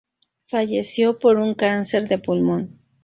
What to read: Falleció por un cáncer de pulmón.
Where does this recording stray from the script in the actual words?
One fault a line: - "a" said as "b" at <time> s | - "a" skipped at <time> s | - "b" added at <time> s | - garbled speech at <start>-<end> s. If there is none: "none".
none